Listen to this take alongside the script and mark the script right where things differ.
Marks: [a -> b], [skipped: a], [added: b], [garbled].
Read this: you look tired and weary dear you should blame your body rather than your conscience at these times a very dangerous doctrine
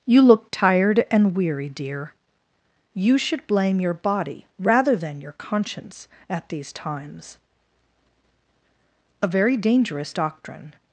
you look tired and weary dear you should blame your body rather than your conscience at these times a very dangerous doctrine